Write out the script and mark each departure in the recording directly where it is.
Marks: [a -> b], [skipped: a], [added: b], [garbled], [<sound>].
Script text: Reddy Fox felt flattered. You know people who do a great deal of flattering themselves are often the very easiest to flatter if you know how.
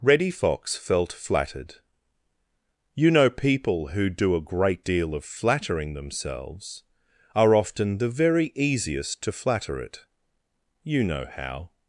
Reddy Fox felt flattered. You know people who do a great deal of flattering themselves are often the very easiest to flatter [if -> it] you know how.